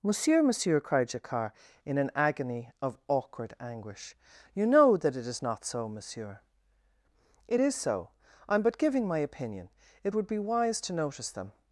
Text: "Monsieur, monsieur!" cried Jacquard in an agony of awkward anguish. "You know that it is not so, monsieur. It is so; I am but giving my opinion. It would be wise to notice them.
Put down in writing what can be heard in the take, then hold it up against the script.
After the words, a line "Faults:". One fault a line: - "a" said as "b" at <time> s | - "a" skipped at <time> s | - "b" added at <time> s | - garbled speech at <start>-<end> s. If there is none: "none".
"Monsieur, monsieur!" cried Jacquard in an agony of awkward anguish. "You know that it is not so, monsieur. It is so; I am but giving my opinion. It would be wise to notice them.
Faults:
none